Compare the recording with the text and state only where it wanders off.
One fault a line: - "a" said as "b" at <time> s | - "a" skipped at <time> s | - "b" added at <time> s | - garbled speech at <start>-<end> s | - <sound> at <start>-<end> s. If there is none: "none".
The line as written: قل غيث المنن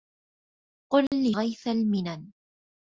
- dropout at 1.1-1.1 s